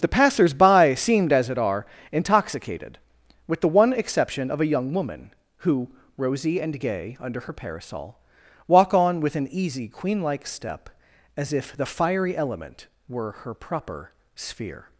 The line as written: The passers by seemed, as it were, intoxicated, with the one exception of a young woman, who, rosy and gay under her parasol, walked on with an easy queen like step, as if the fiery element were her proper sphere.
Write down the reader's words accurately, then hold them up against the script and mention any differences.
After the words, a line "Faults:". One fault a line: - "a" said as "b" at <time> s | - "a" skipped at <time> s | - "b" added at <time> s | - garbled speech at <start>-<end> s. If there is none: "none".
The passers by seemed, as it are, intoxicated, with the one exception of a young woman, who, rosy and gay under her parasol, walk on with an easy queen like step, as if the fiery element were her proper sphere.
Faults:
- "were" said as "are" at 1.6 s
- "walked" said as "walk" at 8.7 s